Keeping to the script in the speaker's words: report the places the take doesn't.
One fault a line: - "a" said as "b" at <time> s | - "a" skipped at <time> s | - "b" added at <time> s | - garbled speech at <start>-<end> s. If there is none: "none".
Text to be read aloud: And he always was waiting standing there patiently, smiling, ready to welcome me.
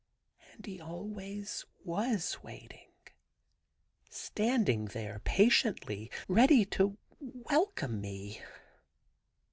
- "smiling" skipped at 6.1 s